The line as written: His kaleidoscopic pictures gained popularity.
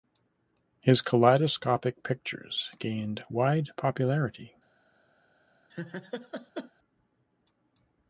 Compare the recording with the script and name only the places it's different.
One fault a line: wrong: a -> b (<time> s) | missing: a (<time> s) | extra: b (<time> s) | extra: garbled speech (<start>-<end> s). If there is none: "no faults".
extra: wide (3.3 s)